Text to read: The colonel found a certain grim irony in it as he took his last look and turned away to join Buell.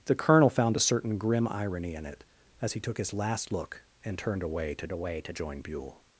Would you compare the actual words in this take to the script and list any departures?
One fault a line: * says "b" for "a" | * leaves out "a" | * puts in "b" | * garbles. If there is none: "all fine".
* puts in "away to"